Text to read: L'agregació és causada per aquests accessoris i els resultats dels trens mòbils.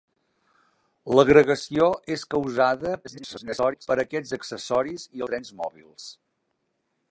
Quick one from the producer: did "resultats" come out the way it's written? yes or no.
no